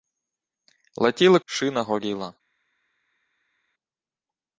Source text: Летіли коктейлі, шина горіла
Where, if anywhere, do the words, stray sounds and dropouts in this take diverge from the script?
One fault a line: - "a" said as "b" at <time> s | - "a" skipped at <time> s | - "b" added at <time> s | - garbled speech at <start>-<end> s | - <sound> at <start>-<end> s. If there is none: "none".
- "коктейлі" skipped at 1.4 s